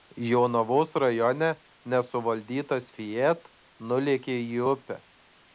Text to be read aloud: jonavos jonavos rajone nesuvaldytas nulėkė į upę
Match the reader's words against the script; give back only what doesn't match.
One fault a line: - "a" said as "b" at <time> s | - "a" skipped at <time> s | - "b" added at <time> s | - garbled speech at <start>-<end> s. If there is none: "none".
- "jonavos" skipped at 0.9 s
- "fiat" added at 3.0 s